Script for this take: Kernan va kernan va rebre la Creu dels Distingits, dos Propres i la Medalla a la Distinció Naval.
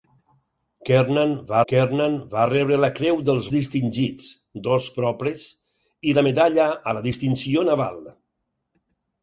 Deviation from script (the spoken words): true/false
false